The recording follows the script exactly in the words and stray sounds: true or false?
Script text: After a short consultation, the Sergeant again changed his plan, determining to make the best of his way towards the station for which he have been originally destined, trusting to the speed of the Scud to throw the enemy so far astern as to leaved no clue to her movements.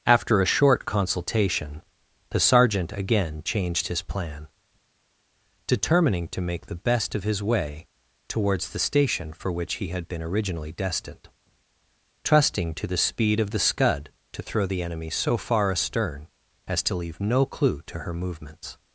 false